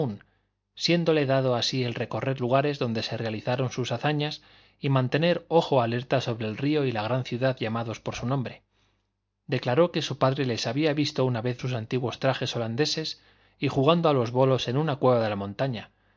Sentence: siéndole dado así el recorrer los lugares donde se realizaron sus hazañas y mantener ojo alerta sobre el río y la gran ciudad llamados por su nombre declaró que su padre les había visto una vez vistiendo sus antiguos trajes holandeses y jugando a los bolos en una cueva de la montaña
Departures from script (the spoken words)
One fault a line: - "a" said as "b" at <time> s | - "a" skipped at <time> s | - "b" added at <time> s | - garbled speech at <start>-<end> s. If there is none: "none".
- "los" skipped at 2.4 s
- "vistiendo" skipped at 11.6 s